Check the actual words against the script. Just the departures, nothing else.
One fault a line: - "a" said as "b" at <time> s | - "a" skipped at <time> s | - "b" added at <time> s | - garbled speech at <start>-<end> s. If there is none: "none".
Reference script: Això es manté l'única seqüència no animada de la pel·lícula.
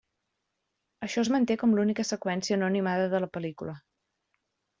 - "com" added at 1.6 s